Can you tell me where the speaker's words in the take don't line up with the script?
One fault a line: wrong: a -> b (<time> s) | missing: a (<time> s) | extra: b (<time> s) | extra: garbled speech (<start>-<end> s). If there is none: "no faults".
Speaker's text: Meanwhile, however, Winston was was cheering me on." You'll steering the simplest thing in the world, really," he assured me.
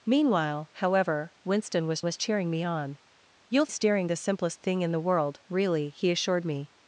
no faults